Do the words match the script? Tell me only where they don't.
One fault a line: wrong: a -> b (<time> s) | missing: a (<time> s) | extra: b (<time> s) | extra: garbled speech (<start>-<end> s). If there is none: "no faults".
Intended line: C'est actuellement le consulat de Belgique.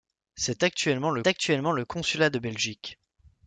extra: actuellement le (1.3 s)